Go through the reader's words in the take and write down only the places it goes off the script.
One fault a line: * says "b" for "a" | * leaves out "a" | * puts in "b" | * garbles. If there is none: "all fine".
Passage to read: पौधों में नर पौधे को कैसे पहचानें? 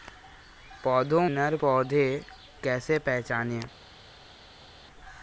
* leaves out "में"
* leaves out "को"